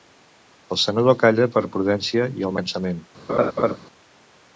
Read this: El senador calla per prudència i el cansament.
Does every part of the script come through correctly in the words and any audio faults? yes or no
no